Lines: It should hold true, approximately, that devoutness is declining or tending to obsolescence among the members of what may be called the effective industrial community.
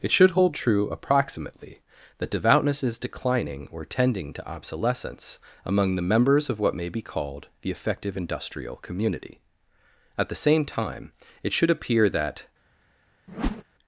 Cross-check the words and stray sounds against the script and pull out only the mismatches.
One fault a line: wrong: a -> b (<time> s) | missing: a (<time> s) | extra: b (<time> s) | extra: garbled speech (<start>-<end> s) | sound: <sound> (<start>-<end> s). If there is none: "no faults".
extra: At the same time it should appear that (10.2 s)
sound: whoosh (13.3-13.6 s)